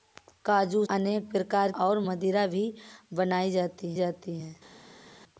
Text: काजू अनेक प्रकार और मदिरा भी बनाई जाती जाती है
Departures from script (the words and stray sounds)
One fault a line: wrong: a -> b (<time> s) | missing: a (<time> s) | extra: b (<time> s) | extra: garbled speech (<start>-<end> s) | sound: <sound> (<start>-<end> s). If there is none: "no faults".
no faults